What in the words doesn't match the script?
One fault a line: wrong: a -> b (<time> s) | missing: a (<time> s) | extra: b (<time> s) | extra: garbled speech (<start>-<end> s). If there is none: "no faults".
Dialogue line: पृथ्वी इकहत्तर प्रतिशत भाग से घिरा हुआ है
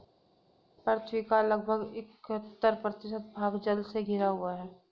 extra: का लगभग (1.2 s)
extra: जल (3.6 s)